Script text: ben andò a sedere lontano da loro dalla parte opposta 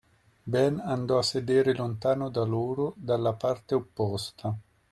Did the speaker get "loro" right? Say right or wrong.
right